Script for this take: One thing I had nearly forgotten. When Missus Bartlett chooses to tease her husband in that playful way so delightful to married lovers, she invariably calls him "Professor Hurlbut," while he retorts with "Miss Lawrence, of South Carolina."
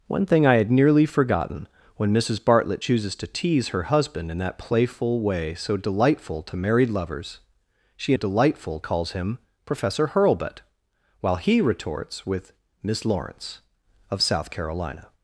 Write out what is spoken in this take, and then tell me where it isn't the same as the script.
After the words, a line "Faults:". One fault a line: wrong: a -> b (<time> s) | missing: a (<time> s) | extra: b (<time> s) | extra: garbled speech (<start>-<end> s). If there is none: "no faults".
One thing I had nearly forgotten. When Missus Bartlett chooses to tease her husband in that playful way so delightful to married lovers, she delightful calls him "Professor Hurlbut," while he retorts with "Miss Lawrence, of South Carolina."
Faults:
wrong: invariably -> delightful (8.1 s)